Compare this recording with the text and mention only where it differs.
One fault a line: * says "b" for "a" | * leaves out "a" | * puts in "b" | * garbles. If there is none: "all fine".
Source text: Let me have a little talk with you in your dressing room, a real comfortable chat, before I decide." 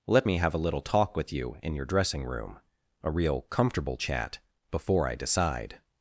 all fine